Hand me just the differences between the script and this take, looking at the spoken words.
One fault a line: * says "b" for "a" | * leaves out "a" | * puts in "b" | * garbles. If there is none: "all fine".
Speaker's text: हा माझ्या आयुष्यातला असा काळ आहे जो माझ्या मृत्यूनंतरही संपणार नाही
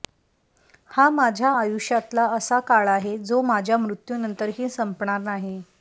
all fine